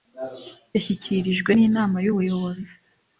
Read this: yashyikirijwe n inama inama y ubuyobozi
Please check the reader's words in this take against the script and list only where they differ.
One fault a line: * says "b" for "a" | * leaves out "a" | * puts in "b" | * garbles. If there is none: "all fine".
* leaves out "inama"